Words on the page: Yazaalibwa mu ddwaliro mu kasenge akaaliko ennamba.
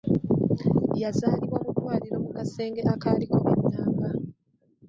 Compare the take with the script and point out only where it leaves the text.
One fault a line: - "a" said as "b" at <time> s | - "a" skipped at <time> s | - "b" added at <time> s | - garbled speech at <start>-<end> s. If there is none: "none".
none